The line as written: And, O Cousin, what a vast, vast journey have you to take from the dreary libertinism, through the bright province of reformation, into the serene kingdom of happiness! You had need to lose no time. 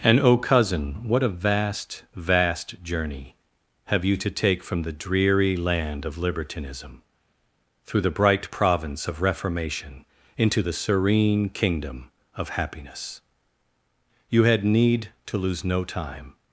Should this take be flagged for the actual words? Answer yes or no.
yes